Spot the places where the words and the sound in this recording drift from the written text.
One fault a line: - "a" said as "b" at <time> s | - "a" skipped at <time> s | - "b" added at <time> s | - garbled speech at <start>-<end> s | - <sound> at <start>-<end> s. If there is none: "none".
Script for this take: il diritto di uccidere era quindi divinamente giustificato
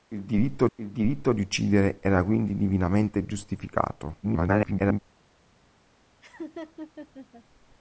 - "il diritto" added at 0.7 s
- garbled speech at 4.2-5.0 s
- laugh at 6.2-7.4 s